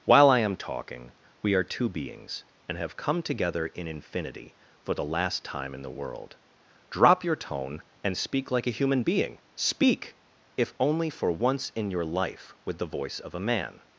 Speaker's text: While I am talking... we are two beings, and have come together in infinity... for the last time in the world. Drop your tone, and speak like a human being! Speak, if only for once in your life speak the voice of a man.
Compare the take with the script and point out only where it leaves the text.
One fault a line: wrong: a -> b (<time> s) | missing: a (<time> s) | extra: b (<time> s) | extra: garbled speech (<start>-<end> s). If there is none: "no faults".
wrong: speak -> with (12.6 s)